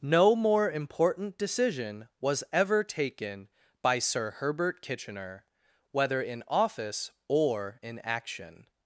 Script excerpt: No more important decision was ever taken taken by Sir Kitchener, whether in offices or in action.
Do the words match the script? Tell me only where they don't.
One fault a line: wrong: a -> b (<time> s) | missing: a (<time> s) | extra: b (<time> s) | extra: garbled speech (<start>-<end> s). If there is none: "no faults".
missing: taken (3.5 s)
extra: Herbert (4.3 s)
wrong: offices -> office (6.5 s)